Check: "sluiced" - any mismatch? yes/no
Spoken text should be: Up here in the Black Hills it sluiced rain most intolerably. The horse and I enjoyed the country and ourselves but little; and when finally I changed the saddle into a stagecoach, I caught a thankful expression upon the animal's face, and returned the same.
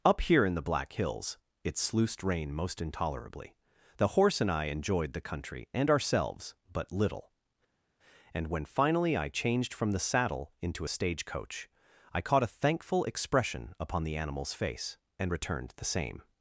no